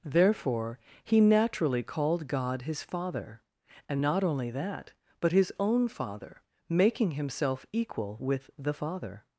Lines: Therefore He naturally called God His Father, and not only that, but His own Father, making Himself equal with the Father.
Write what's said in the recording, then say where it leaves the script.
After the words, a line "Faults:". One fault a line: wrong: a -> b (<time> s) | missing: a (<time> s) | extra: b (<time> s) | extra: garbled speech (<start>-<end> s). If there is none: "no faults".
Therefore He naturally called God His Father, and not only that, but His own Father, making Himself equal with the Father.
Faults:
no faults